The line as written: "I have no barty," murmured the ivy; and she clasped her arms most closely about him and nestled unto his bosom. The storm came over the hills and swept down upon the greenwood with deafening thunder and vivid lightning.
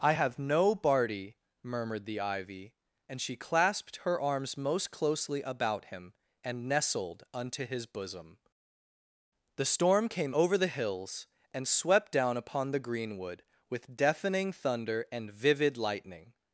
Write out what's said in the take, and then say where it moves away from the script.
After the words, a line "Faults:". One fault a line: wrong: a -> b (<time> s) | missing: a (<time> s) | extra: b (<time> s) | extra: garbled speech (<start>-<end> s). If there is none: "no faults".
"I have no barty," murmured the ivy; and she clasped her arms most closely about him and nestled unto his bosom. The storm came over the hills and swept down upon the greenwood with deafening thunder and vivid lightning.
Faults:
no faults